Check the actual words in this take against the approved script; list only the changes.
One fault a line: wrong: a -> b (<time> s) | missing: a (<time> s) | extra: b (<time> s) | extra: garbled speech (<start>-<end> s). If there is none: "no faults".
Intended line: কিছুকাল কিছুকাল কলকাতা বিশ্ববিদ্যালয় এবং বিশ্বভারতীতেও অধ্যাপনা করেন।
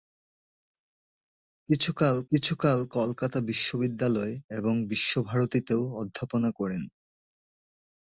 no faults